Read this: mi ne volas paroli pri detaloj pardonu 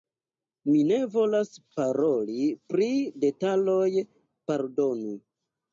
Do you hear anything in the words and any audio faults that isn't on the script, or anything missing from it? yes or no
no